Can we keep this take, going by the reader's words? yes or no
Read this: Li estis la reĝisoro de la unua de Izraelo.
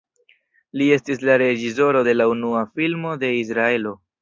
no